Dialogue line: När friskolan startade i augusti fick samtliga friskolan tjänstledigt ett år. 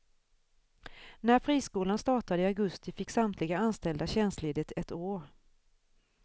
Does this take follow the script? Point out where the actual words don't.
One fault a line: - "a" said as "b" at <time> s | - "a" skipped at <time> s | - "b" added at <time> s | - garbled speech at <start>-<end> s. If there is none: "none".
- "friskolan" said as "anställda" at 3.6 s